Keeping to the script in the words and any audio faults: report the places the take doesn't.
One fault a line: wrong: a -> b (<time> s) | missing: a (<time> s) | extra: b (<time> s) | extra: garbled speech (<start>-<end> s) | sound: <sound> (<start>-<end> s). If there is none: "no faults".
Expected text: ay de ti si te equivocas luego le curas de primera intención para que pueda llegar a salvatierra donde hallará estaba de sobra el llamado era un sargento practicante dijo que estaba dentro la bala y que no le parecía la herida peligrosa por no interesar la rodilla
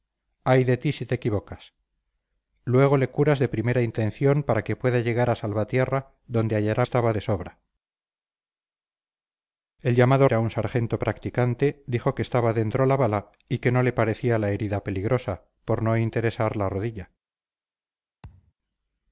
sound: thud (18.2-18.5 s)